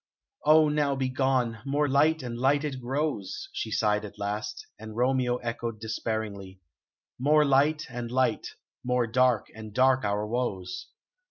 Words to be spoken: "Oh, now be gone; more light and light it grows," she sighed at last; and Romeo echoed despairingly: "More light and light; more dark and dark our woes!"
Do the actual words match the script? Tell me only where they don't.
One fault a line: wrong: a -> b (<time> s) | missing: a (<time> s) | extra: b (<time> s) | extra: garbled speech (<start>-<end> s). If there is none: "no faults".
no faults